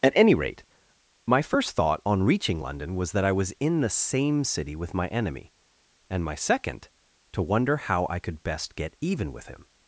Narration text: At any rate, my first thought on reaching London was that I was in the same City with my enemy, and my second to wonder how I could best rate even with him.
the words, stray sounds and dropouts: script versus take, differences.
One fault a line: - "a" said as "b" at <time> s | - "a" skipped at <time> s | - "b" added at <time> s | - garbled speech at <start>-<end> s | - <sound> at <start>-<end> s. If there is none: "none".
- "rate" said as "get" at 8.7 s